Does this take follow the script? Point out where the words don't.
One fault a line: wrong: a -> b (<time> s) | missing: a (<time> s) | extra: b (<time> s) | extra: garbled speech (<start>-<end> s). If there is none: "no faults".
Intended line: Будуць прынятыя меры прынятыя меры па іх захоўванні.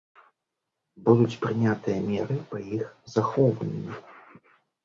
missing: прынятыя меры (2.4 s)